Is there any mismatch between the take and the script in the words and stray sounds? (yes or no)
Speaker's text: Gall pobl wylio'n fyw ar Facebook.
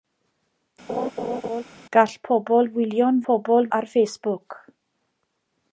yes